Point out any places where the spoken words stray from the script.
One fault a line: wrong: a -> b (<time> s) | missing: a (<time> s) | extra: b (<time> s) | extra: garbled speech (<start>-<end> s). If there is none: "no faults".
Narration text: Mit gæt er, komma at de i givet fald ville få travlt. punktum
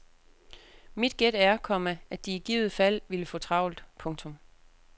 no faults